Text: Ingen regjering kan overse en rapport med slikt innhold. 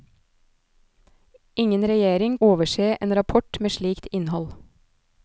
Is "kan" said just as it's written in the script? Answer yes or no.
no